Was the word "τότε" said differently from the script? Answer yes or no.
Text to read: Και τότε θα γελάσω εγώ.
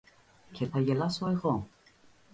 yes